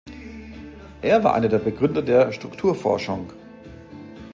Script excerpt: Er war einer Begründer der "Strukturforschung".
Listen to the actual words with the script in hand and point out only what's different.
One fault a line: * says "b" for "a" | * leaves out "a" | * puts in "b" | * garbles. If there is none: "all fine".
* puts in "der"